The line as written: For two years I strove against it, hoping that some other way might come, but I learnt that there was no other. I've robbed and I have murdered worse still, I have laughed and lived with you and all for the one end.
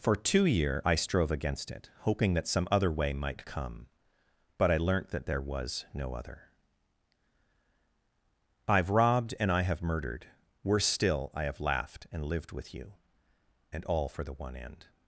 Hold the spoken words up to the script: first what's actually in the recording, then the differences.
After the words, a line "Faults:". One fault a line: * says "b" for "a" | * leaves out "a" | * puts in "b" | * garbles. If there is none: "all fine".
For two year I strove against it, hoping that some other way might come, but I learnt that there was no other. I've robbed and I have murdered worse still, I have laughed and lived with you and all for the one end.
Faults:
* says "year" for "years"